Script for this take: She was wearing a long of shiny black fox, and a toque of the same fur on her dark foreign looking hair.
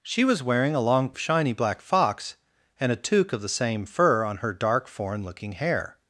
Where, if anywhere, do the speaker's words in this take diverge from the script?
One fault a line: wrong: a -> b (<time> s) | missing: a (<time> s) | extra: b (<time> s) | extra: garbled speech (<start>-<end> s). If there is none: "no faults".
no faults